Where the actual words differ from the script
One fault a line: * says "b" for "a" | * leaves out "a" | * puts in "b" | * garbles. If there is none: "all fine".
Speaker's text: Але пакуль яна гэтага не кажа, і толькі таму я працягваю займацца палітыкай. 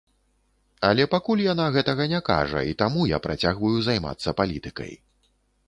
* leaves out "толькі"